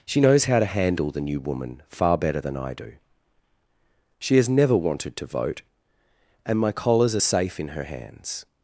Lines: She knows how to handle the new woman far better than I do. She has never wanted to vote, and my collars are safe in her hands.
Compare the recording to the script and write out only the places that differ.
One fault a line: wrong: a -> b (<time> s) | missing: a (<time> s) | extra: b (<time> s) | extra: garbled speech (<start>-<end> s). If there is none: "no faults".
no faults